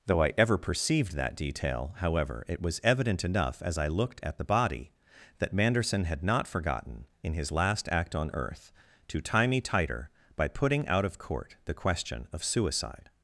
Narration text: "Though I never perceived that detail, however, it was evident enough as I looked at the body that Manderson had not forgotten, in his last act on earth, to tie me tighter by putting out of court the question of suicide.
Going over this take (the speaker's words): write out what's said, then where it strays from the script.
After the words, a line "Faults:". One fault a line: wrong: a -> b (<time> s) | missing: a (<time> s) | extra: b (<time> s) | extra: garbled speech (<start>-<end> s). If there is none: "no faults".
"Though I ever perceived that detail, however, it was evident enough as I looked at the body that Manderson had not forgotten, in his last act on earth, to tie me tighter by putting out of court the question of suicide.
Faults:
wrong: never -> ever (0.4 s)